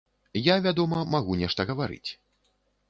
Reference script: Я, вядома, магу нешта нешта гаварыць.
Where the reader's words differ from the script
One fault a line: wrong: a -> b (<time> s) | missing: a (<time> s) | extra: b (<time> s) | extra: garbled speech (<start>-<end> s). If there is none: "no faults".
missing: нешта (1.7 s)